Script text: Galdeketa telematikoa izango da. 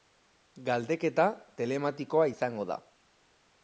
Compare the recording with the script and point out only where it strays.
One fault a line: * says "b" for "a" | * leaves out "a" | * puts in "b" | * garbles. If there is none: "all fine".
all fine